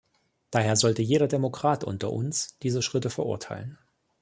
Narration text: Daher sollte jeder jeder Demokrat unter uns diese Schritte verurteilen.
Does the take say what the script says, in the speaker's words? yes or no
no